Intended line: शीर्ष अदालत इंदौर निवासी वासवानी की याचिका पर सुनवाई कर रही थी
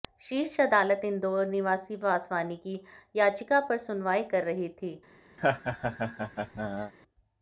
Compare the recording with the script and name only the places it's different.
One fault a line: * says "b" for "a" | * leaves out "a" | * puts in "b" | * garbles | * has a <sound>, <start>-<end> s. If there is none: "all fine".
* has a laugh, 5.4-6.9 s